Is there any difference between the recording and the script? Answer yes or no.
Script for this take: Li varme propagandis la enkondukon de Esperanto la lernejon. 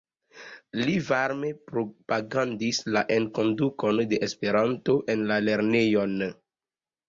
yes